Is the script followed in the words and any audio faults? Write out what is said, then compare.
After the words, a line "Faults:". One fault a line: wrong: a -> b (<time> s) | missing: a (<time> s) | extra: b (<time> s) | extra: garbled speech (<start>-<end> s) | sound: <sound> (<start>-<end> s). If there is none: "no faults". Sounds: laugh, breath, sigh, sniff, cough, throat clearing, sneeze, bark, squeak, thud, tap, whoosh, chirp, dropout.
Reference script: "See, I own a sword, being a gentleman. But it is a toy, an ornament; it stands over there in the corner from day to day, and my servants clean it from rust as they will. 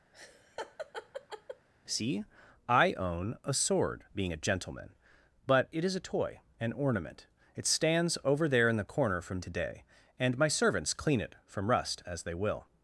"See, I own a sword, being a gentleman. But it is a toy, an ornament; it stands over there in the corner from to day, and my servants clean it from rust as they will.
Faults:
sound: laugh (0.1-1.7 s)
missing: day (9.4 s)